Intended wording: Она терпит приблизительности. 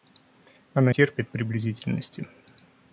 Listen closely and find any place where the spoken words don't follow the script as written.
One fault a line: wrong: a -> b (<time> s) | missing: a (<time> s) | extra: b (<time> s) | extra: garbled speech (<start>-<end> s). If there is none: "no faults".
no faults